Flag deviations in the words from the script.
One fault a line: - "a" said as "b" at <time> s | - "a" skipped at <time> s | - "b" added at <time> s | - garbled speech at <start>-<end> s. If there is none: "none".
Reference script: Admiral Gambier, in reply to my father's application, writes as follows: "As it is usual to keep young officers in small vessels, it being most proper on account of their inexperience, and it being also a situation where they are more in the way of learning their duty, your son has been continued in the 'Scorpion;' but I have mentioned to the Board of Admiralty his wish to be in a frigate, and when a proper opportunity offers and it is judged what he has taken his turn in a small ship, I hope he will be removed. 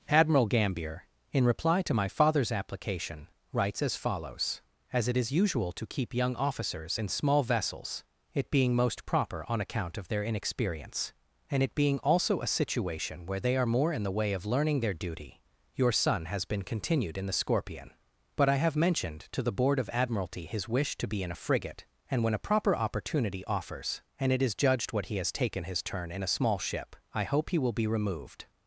none